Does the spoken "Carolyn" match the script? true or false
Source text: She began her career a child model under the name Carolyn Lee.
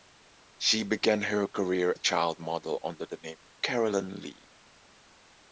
true